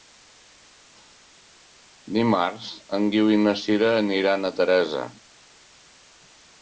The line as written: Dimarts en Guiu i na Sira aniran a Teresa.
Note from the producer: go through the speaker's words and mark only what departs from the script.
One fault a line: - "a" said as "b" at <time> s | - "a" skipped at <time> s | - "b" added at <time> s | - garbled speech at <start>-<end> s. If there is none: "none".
none